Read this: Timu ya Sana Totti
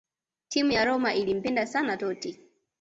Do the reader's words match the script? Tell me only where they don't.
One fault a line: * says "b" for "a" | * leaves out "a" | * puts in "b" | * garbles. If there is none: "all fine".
* puts in "Roma ilimpenda"